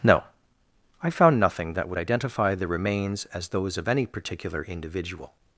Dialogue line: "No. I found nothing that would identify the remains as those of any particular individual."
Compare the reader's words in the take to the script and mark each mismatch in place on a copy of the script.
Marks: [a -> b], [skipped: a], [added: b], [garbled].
"No. I found nothing that would identify the remains as those of any particular individual."